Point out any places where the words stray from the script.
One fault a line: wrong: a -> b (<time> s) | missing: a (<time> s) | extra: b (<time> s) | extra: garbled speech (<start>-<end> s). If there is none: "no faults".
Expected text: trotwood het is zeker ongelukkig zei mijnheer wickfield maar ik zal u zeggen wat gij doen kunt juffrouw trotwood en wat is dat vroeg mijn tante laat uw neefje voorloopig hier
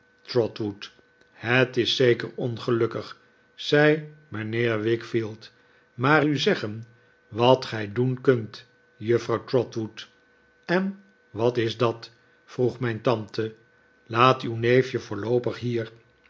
missing: ik zal (6.3 s)